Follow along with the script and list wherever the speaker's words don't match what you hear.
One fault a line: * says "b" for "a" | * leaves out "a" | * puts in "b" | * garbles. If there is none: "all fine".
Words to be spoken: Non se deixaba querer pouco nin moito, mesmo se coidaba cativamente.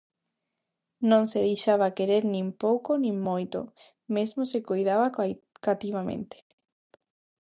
* puts in "nin"